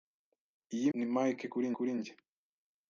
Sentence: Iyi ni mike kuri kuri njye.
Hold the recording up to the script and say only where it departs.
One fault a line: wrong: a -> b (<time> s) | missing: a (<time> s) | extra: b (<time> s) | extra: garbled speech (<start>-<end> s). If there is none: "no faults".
no faults